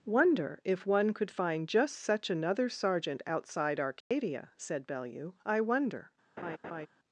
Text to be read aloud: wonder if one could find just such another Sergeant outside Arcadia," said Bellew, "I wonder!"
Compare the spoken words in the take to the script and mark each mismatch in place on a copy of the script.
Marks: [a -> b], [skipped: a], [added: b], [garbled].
wonder if one could find just such another Sergeant outside Arcadia," said Bellew, "I wonder!"